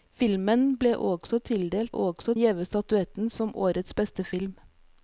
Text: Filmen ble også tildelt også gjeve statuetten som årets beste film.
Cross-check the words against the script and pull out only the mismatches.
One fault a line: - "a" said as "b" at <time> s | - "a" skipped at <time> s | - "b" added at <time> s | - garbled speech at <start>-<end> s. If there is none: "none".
none